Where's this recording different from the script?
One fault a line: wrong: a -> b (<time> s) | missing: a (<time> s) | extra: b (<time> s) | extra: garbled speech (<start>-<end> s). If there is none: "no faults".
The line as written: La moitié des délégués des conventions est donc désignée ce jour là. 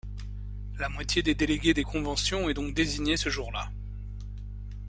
no faults